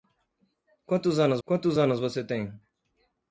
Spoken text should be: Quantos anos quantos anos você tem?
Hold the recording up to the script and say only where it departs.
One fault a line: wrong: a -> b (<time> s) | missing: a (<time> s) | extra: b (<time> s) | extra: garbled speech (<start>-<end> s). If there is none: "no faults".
no faults